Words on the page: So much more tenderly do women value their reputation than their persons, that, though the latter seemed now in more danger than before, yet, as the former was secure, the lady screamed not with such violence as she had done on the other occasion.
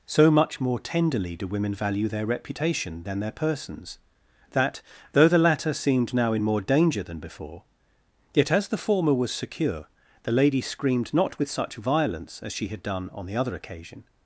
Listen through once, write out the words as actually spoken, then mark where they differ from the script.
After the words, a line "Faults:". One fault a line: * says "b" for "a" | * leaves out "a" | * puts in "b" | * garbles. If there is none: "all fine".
So much more tenderly do women value their reputation than their persons, that, though the latter seemed now in more danger than before, yet, as the former was secure, the lady screamed not with such violence as she had done on the other occasion.
Faults:
all fine